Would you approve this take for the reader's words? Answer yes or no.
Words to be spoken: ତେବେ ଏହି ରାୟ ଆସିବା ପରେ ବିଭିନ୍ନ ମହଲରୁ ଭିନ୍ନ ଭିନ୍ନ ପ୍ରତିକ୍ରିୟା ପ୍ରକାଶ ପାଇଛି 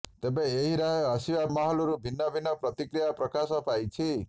no